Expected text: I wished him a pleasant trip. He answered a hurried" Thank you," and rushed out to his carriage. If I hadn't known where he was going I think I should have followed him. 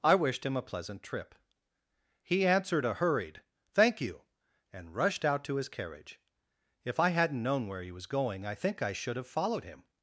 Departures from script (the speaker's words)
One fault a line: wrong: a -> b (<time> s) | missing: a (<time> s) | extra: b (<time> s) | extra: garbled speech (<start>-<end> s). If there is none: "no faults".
no faults